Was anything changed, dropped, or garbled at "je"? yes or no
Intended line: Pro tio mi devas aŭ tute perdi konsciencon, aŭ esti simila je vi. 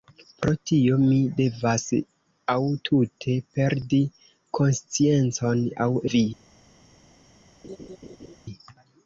yes